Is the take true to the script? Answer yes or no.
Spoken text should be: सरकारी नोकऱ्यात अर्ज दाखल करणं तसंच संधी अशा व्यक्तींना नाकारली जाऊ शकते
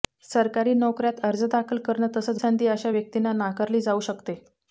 yes